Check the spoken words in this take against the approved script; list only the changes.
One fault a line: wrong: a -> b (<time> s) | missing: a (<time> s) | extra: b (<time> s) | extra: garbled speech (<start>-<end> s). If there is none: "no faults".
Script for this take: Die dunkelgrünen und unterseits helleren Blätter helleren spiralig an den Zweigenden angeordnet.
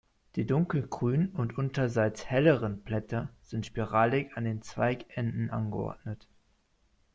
wrong: helleren -> sind (3.4 s)